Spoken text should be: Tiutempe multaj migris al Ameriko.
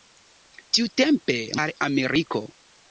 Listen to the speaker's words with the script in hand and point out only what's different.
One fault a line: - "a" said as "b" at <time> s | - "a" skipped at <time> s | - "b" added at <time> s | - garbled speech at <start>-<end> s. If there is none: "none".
- "multaj migris" skipped at 1.4 s